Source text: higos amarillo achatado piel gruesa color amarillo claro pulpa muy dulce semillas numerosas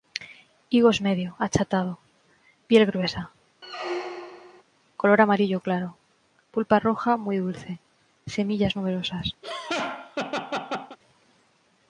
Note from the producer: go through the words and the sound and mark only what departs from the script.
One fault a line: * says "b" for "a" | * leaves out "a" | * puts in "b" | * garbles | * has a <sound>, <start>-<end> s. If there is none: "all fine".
* says "medio" for "amarillo"
* has a squeak, 3.6-4.6 s
* puts in "roja"
* has a laugh, 9.4-11.0 s